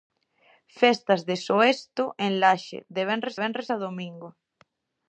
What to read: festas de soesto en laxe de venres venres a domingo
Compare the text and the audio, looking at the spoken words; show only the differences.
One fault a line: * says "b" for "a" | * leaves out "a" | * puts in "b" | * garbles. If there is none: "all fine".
all fine